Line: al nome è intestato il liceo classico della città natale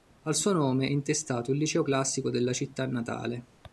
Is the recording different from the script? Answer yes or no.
yes